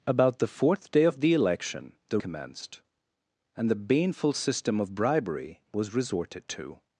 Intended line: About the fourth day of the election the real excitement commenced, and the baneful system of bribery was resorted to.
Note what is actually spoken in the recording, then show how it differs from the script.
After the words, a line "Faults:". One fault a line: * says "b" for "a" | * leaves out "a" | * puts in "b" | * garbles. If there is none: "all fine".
About the fourth day of the election the commenced, and the baneful system of bribery was resorted to.
Faults:
* leaves out "real excitement"